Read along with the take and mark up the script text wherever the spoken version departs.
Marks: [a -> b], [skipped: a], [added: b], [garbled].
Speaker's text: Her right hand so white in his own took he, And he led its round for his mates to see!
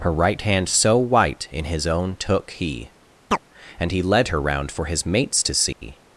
Her right hand so white in his own took he, And he led [its -> her] round for his mates to see!